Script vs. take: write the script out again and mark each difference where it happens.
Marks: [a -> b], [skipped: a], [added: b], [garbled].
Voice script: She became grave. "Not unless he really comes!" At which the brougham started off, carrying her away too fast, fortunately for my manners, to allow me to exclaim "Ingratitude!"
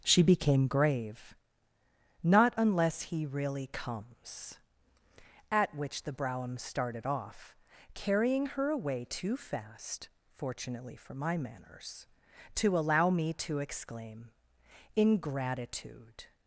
She became grave. "Not unless he really comes!" At which the brougham started off, carrying her away too fast, fortunately for my manners, to allow me to exclaim "Ingratitude!"